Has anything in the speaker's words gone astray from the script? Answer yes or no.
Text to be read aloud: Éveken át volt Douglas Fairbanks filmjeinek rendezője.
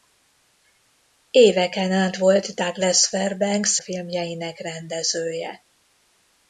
no